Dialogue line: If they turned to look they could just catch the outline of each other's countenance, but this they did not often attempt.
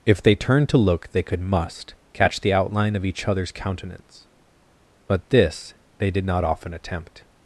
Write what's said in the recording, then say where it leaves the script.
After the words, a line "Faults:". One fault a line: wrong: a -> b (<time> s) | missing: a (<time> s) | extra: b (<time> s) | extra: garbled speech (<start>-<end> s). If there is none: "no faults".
If they turned to look they could must catch the outline of each other's countenance, but this they did not often attempt.
Faults:
wrong: just -> must (1.4 s)